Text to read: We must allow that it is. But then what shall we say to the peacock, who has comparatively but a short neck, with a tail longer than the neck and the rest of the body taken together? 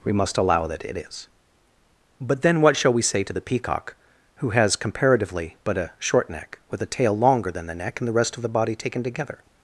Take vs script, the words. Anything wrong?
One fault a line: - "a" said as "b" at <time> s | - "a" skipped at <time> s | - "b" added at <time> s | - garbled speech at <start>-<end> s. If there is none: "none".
none